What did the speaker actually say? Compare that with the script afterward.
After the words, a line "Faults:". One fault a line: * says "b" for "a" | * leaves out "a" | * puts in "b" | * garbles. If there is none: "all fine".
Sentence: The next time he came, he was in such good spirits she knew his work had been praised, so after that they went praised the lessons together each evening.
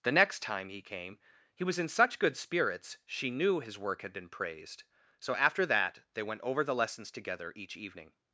The next time he came, he was in such good spirits she knew his work had been praised, so after that they went over the lessons together each evening.
Faults:
* says "over" for "praised"